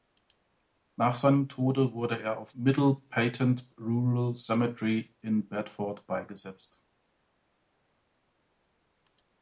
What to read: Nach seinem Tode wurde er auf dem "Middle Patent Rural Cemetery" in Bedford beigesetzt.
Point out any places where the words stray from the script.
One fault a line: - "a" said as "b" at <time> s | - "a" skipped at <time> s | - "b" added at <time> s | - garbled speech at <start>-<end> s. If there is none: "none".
- "dem" skipped at 2.5 s